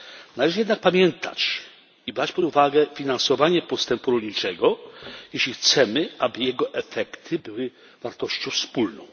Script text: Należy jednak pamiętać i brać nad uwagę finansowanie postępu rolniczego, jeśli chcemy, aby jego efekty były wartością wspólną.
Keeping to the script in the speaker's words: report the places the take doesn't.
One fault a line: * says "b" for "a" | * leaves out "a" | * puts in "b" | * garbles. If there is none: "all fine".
* says "pod" for "nad"